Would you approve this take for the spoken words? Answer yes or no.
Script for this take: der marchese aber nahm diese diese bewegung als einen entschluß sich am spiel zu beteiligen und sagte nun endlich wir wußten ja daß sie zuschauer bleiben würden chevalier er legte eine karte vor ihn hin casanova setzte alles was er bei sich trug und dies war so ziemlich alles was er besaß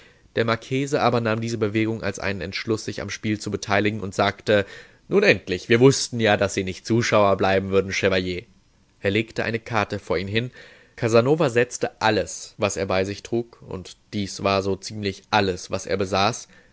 no